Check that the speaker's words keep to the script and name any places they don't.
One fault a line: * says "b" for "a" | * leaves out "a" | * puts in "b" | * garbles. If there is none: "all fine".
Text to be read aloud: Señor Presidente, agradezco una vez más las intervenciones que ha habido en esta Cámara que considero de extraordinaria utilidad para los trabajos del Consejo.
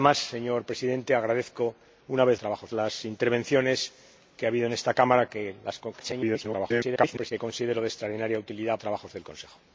* says "trabajos" for "más"
* garbles
* leaves out "para los"